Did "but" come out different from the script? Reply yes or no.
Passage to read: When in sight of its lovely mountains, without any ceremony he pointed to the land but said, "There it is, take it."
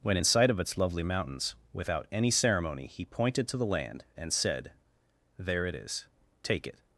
yes